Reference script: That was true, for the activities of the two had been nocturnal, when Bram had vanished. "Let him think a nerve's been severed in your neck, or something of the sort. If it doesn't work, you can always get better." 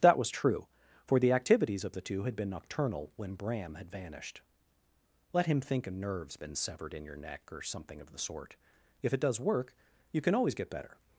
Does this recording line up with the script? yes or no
no